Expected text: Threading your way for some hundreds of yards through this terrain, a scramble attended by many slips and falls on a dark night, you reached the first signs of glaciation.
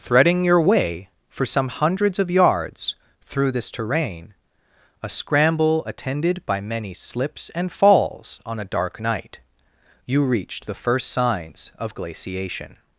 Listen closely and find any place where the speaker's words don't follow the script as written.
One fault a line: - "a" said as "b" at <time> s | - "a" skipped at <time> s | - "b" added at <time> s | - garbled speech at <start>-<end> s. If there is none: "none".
none